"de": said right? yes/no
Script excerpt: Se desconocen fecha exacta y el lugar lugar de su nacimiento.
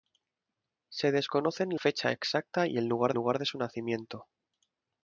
yes